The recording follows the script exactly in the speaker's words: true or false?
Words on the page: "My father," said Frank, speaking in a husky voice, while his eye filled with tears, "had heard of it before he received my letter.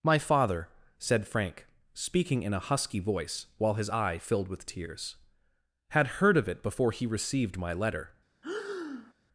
true